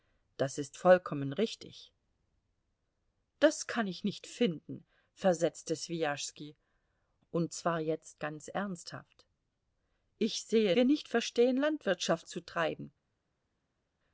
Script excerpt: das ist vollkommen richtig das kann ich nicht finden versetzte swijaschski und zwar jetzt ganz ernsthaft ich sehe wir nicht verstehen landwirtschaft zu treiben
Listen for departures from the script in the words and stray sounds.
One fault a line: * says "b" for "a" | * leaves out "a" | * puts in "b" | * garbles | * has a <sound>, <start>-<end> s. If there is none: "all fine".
all fine